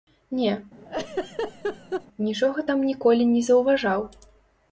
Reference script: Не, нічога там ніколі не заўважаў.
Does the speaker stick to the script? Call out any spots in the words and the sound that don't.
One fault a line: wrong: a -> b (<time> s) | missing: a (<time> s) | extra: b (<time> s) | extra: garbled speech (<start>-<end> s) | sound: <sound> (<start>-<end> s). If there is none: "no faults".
sound: laugh (0.8-2.1 s)